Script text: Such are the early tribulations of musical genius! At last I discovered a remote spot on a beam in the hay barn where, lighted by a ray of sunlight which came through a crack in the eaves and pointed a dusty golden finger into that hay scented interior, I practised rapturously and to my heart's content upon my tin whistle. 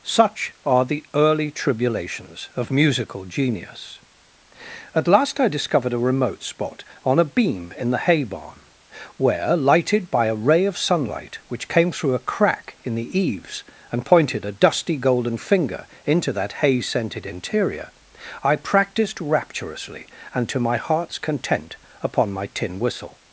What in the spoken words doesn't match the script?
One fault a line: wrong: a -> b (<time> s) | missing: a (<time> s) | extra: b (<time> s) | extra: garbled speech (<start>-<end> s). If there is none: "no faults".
no faults